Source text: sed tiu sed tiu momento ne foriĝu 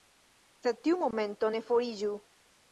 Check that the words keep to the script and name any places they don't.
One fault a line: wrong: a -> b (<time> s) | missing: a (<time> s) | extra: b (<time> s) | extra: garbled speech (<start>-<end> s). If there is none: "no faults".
missing: sed tiu (1.0 s)